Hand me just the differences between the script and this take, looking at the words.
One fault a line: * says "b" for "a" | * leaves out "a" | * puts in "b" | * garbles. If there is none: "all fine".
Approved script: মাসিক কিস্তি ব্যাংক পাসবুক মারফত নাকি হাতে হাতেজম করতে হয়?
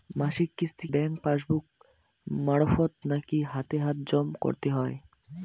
all fine